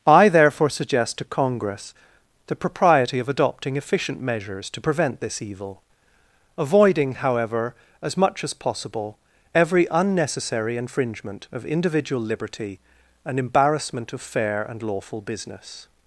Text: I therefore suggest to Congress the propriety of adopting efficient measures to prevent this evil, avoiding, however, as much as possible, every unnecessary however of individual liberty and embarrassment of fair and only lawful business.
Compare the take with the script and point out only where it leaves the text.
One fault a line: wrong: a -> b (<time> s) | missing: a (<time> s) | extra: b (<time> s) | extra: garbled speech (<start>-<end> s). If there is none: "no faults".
wrong: however -> infringement (10.8 s)
missing: only (14.8 s)